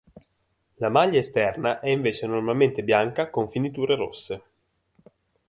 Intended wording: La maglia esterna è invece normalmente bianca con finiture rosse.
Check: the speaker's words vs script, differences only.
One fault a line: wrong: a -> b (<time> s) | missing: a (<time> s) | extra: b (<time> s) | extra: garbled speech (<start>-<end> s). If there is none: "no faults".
no faults